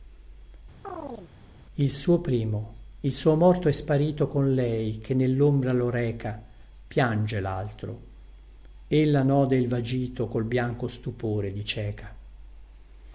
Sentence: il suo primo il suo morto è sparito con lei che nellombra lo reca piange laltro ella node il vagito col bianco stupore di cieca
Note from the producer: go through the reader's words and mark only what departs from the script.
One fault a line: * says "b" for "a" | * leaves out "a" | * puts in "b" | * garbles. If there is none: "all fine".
all fine